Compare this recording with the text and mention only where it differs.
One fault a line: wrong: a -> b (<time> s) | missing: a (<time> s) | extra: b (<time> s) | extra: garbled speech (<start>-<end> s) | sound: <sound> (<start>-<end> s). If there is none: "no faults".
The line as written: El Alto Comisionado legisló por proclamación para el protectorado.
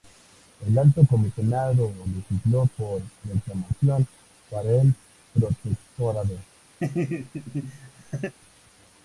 sound: laugh (6.8-8.3 s)